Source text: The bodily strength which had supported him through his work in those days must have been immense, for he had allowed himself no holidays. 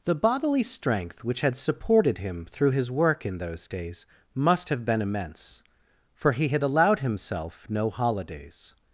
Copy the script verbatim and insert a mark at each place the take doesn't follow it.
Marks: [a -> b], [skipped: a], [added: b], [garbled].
The bodily strength which had supported him through his work in those days must have been immense, for he had allowed himself no holidays.